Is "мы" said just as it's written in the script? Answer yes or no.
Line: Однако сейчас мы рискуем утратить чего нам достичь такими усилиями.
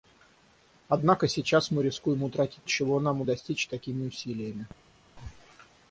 yes